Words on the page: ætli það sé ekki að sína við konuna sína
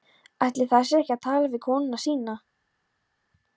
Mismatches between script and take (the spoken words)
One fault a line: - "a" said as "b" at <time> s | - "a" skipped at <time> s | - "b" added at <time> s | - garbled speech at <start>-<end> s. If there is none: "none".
- "sína" said as "tala" at 1.3 s